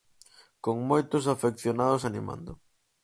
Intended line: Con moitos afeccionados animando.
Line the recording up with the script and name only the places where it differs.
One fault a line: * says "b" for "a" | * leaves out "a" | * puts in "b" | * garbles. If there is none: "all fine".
all fine